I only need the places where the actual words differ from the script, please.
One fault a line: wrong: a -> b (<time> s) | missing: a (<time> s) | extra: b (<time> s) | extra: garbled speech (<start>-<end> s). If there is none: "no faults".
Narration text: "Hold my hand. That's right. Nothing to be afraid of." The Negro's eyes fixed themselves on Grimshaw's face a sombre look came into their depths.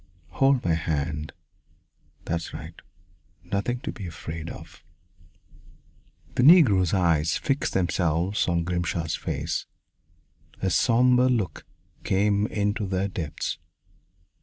no faults